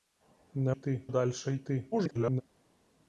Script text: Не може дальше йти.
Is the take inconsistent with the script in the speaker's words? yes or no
yes